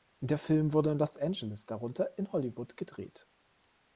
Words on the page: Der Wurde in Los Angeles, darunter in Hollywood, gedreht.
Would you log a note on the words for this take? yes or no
yes